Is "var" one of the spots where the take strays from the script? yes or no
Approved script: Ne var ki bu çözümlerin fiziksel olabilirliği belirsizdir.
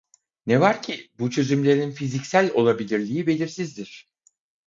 no